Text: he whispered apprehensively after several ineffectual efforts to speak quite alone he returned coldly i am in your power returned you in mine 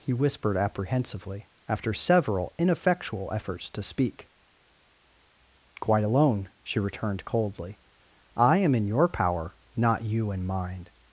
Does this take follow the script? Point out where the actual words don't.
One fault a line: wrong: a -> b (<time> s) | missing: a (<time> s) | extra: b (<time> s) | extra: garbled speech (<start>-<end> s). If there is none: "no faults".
wrong: he -> she (6.6 s)
wrong: returned -> not (9.7 s)